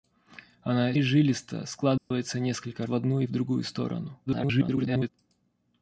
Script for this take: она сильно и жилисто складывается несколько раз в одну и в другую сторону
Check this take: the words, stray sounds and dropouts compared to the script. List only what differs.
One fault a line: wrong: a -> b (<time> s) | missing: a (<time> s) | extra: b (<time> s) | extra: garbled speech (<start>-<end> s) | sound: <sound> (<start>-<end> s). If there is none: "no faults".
missing: сильно (0.9 s)
sound: dropout (2.0-2.1 s)
missing: раз (2.9 s)
extra: garbled speech (4.3-5.1 s)